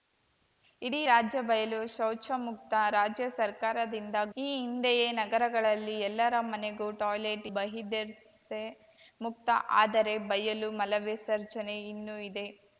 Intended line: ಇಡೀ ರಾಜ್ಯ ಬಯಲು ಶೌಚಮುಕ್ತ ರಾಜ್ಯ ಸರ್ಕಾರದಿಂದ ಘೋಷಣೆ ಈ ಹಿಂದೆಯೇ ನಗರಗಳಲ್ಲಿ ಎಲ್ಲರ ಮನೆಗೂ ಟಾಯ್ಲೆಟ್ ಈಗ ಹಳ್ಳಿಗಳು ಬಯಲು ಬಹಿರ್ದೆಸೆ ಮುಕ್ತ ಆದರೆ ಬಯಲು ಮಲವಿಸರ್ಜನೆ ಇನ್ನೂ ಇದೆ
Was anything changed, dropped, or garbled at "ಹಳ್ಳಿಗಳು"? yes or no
yes